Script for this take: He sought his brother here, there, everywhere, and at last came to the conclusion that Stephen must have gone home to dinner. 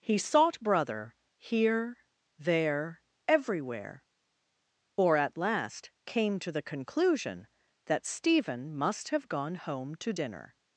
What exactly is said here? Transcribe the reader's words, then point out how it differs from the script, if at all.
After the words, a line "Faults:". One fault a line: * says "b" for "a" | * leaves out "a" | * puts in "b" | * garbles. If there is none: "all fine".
He sought brother here, there, everywhere, or at last came to the conclusion that Stephen must have gone home to dinner.
Faults:
* leaves out "his"
* says "or" for "and"